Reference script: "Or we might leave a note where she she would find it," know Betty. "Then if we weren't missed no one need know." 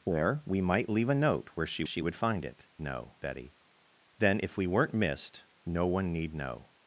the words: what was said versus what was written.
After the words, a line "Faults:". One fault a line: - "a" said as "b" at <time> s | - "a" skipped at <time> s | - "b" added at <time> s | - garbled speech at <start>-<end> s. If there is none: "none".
"Or we might leave a note where she she would find it," know Betty. "Then if we weren't missed no one need know."
Faults:
none